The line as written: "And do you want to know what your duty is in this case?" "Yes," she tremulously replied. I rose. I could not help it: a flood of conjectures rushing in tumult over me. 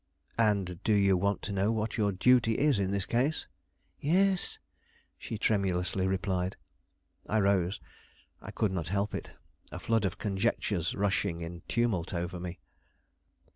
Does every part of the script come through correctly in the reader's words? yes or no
yes